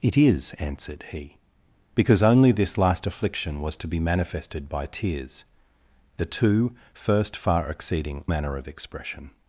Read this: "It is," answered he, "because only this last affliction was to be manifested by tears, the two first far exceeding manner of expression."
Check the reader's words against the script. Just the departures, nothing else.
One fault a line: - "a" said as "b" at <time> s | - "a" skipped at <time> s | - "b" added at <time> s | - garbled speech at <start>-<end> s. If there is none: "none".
none